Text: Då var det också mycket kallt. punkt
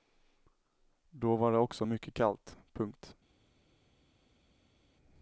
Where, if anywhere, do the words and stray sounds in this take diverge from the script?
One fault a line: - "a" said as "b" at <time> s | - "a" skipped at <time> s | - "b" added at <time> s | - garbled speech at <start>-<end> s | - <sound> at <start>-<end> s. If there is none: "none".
none